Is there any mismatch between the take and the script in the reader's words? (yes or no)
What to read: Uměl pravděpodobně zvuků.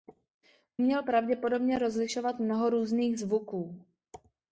yes